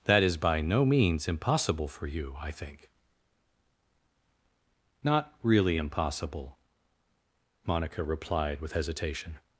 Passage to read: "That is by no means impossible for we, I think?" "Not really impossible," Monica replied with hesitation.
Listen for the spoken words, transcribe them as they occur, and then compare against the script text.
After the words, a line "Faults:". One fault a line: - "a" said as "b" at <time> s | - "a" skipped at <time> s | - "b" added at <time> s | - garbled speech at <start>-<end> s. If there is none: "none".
"That is by no means impossible for you, I think?" "Not really impossible," Monica replied with hesitation.
Faults:
- "we" said as "you" at 2.1 s